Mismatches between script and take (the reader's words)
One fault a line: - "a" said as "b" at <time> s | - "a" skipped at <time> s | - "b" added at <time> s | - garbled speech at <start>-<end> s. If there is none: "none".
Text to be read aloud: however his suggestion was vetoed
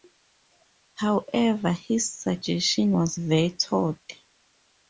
none